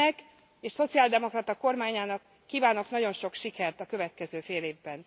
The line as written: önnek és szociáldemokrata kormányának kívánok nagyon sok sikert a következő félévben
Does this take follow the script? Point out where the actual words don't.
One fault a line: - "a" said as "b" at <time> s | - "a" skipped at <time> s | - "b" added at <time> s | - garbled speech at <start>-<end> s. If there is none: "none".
none